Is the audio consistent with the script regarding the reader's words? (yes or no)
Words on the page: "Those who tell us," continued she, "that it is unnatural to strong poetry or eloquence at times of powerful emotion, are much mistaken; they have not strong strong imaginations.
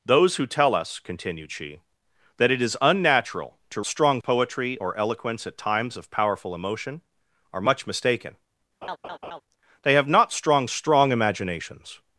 yes